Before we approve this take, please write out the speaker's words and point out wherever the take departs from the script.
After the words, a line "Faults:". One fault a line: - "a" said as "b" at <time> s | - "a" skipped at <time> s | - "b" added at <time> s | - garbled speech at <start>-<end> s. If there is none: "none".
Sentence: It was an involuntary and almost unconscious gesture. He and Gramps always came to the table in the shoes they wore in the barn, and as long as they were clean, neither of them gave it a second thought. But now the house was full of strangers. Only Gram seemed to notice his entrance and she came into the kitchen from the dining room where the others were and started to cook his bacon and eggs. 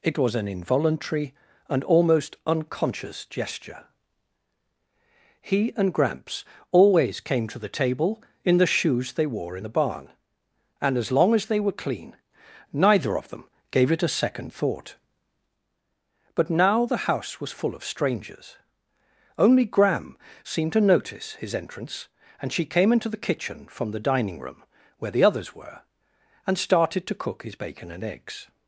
It was an involuntary and almost unconscious gesture. He and Gramps always came to the table in the shoes they wore in the barn, and as long as they were clean, neither of them gave it a second thought. But now the house was full of strangers. Only Gram seemed to notice his entrance and she came into the kitchen from the dining room where the others were and started to cook his bacon and eggs.
Faults:
none